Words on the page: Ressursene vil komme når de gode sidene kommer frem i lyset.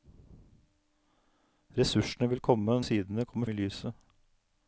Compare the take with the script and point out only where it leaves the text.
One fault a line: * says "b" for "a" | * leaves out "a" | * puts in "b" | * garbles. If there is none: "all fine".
* leaves out "når de gode"
* leaves out "frem"